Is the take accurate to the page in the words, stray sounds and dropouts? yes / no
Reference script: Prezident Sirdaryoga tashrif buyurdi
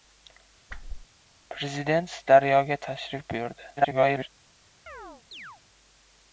no